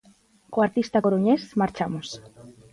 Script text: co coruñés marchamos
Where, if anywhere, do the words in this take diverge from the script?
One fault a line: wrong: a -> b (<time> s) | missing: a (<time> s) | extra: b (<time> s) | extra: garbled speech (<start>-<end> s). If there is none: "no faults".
extra: artista (0.6 s)